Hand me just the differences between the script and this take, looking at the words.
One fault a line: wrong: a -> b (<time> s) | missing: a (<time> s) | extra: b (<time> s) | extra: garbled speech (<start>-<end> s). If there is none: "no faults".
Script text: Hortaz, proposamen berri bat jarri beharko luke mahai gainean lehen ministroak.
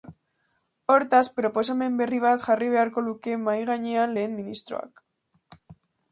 no faults